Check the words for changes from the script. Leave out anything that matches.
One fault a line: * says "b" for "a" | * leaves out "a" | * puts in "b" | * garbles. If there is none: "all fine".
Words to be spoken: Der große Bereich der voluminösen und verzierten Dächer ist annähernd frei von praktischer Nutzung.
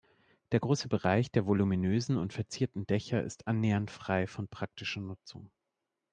all fine